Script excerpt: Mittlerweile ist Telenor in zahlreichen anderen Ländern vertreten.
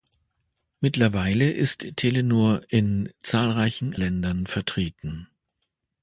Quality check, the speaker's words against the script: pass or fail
fail